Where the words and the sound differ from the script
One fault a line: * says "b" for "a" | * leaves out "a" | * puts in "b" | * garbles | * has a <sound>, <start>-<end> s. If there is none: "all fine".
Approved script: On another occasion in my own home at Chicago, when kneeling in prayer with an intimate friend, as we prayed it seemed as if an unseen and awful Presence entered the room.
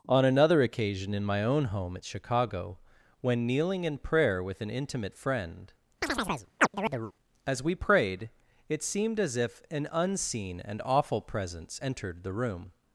* has a chirp, 6.0-7.1 s